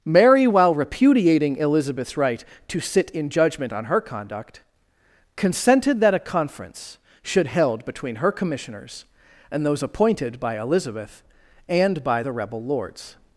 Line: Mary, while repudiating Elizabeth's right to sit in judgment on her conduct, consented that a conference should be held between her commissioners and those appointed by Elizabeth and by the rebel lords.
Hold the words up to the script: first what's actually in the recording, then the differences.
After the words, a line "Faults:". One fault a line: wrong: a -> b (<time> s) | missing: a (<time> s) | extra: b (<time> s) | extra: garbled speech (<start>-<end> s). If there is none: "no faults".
Mary, while repudiating Elizabeth's right to sit in judgment on her conduct, consented that a conference should held between her commissioners and those appointed by Elizabeth and by the rebel lords.
Faults:
missing: be (7.5 s)